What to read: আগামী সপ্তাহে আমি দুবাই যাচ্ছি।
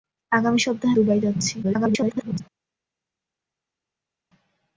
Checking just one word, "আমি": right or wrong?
wrong